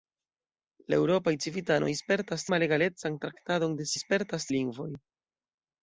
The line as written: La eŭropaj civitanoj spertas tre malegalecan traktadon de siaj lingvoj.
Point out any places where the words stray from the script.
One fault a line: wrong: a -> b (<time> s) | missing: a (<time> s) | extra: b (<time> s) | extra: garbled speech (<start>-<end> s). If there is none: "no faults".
missing: tre (2.5 s)
wrong: siaj -> spertas (4.0 s)